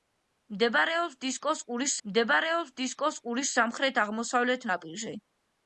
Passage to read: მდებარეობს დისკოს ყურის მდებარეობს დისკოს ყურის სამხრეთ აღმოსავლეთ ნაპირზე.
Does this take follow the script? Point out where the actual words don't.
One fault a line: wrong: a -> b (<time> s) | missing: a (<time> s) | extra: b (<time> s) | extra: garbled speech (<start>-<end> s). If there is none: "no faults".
no faults